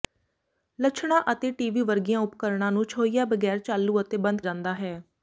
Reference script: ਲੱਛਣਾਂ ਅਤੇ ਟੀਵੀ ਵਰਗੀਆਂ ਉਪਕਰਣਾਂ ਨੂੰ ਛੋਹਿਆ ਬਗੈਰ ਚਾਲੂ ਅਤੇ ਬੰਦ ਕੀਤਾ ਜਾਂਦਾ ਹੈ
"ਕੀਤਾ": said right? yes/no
no